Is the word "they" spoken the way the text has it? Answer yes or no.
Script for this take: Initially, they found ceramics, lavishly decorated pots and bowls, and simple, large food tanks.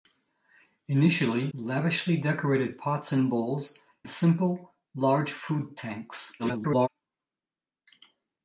no